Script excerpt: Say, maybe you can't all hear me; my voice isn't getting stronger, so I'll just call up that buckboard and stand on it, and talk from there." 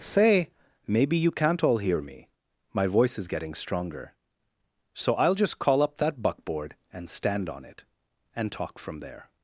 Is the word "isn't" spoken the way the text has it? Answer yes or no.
no